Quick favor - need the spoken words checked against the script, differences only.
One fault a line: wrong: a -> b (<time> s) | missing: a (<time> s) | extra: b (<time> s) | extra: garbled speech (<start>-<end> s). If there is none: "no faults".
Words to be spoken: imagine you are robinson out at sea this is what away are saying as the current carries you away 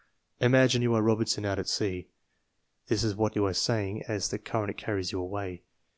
wrong: away -> you (3.3 s)